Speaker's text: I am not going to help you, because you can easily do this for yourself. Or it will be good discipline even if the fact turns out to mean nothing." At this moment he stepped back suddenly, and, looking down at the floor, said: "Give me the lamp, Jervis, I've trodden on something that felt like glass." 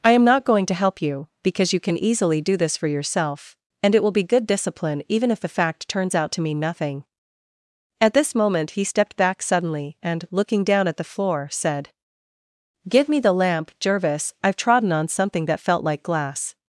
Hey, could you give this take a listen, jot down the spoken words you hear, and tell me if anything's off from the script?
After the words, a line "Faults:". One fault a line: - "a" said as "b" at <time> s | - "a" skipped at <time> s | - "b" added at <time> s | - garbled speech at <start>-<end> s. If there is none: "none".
I am not going to help you, because you can easily do this for yourself. And it will be good discipline even if the fact turns out to mean nothing." At this moment he stepped back suddenly, and, looking down at the floor, said: "Give me the lamp, Jervis, I've trodden on something that felt like glass."
Faults:
- "Or" said as "And" at 3.8 s